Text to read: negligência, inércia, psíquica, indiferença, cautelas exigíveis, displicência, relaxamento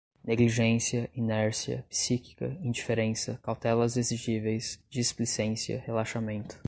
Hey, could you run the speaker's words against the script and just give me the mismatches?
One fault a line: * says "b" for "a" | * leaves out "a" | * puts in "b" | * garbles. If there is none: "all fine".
all fine